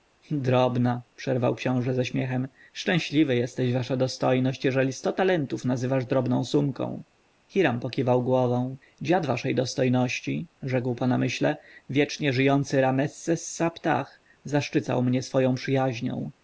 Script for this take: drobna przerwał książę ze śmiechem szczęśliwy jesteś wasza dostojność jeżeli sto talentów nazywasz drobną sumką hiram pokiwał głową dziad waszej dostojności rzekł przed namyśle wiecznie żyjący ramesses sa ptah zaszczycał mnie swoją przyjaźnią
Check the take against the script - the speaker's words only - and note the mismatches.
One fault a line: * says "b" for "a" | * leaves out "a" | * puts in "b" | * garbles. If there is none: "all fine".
* says "po" for "przed"